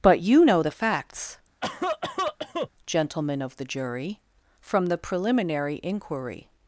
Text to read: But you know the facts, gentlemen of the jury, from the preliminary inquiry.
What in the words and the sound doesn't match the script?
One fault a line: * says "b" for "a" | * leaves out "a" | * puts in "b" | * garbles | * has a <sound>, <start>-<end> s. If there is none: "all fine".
* has a cough, 1.6-2.7 s